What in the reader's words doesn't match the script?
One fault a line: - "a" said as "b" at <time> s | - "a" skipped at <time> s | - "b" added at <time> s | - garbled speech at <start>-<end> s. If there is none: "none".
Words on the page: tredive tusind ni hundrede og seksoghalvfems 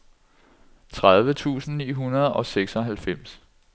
none